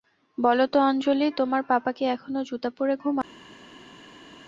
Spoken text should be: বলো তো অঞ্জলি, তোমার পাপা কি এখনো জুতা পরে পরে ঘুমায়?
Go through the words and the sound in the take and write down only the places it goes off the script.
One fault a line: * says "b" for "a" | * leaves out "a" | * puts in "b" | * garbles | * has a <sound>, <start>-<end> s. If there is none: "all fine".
* leaves out "পরে"